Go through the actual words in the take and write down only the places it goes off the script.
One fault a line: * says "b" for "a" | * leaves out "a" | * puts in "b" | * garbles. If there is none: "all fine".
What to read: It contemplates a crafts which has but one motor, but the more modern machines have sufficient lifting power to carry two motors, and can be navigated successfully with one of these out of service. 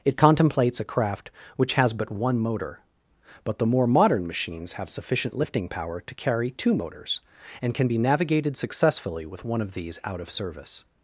* says "craft" for "crafts"